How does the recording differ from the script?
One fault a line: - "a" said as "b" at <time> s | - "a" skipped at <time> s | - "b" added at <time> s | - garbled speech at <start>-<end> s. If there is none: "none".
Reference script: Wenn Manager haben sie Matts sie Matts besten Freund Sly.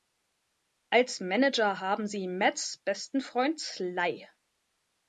- "Wenn" said as "Als" at 0.9 s
- "sie Matts" skipped at 2.8 s